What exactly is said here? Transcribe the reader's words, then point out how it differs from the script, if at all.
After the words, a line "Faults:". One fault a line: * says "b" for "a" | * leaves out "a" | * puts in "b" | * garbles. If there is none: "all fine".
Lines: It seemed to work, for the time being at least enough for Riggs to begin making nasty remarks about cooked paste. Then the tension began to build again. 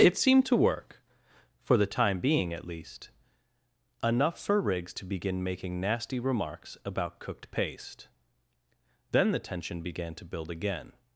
It seemed to work, for the time being at least enough for Riggs to begin making nasty remarks about cooked paste. Then the tension began to build again.
Faults:
all fine